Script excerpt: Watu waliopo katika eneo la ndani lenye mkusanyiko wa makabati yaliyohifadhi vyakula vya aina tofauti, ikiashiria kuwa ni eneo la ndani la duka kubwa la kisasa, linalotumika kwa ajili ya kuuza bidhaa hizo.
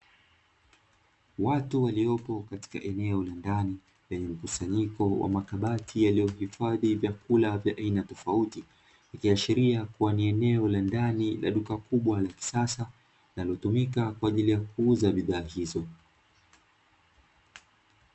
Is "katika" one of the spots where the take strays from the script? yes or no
no